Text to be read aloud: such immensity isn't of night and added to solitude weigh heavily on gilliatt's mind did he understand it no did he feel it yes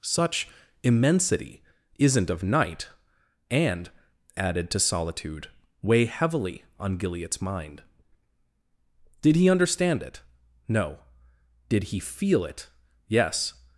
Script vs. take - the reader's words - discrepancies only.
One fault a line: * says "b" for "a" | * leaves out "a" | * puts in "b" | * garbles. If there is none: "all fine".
all fine